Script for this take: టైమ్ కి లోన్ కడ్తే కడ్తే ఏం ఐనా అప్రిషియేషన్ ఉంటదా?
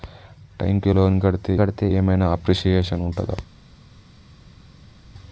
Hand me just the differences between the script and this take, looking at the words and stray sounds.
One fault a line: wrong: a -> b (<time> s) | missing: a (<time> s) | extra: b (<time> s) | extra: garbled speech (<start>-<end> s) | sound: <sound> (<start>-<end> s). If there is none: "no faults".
no faults